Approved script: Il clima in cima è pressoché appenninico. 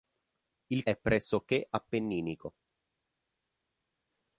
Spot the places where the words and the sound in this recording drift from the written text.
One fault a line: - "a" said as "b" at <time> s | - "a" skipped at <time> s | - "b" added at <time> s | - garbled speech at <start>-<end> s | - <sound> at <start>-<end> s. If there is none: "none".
- "clima in cima" skipped at 0.9 s